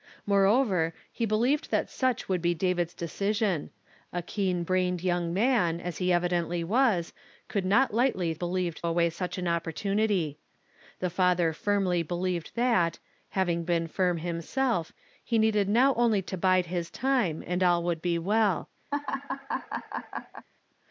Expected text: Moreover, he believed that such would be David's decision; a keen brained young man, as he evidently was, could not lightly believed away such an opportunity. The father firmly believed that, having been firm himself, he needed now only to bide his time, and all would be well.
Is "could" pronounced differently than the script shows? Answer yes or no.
no